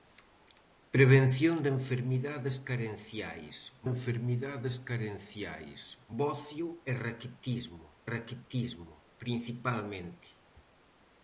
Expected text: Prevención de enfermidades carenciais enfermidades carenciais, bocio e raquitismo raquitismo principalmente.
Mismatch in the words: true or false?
false